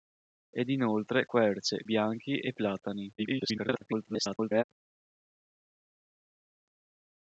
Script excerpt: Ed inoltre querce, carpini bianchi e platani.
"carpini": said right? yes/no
no